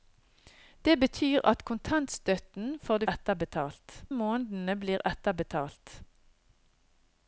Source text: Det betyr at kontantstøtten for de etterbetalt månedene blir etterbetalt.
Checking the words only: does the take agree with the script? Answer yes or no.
yes